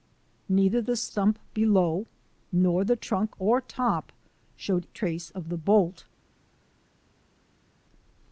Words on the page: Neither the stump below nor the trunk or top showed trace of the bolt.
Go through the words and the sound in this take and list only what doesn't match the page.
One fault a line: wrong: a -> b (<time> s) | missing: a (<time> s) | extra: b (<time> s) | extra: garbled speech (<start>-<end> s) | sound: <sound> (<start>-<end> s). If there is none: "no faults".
no faults